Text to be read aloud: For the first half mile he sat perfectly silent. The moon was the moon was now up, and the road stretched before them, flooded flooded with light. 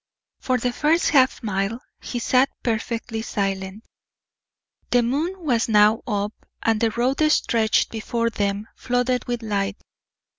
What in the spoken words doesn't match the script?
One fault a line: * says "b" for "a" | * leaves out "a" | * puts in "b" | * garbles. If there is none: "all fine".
* leaves out "the moon was"
* leaves out "flooded"